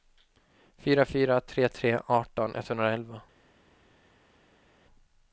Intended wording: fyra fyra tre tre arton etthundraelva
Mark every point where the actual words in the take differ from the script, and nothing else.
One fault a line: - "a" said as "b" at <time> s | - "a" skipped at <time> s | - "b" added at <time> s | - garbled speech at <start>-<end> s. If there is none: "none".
none